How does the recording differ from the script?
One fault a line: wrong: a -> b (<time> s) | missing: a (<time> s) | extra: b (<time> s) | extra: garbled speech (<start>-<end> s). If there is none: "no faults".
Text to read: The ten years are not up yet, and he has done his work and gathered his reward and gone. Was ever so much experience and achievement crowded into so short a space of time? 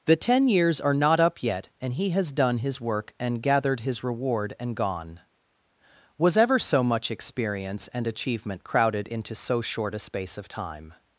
no faults